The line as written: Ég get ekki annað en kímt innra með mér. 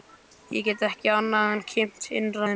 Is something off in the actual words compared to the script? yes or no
yes